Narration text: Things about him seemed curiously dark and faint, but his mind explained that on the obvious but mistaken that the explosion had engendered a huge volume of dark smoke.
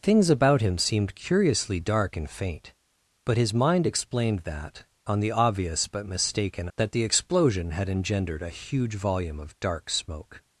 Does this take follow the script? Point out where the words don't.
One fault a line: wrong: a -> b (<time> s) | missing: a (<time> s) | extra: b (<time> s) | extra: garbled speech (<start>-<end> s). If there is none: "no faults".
no faults